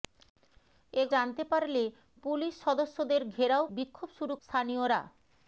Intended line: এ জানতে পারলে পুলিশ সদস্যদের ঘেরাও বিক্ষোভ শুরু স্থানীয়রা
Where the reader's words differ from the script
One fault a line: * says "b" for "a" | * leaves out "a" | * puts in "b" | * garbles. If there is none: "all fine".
all fine